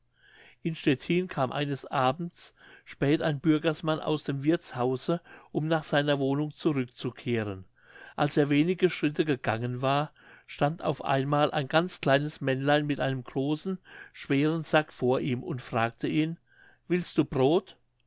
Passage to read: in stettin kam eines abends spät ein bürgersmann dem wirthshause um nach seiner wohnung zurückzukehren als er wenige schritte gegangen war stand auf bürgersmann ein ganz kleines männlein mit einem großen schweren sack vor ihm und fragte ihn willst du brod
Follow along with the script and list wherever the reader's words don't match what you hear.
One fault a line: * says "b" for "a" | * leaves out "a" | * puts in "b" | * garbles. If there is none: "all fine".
* puts in "aus"
* says "einmal" for "bürgersmann"